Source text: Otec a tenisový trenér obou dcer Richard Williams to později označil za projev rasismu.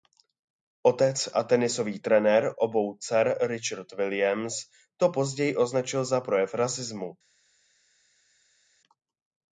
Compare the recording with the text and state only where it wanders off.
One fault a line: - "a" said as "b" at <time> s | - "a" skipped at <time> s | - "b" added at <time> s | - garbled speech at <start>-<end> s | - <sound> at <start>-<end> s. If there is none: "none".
none